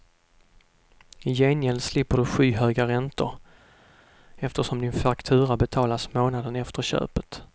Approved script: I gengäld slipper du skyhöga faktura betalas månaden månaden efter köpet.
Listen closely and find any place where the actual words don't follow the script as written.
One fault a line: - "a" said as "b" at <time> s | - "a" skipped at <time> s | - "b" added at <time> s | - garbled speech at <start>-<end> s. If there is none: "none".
- "räntor eftersom din" added at 2.9 s
- "månaden" skipped at 6.5 s